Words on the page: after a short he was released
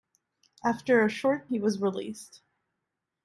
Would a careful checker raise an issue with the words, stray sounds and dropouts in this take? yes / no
no